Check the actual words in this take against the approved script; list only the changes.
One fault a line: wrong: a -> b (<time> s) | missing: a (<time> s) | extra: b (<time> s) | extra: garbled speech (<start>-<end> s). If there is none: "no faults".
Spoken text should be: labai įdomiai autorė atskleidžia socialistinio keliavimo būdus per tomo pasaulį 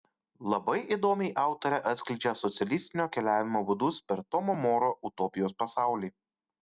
extra: moro utopijos (4.7 s)